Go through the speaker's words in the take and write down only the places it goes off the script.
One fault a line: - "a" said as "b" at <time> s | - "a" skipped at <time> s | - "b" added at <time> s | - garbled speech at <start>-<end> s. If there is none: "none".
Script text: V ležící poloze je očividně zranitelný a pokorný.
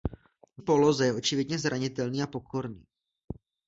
- "ležící" skipped at 0.6 s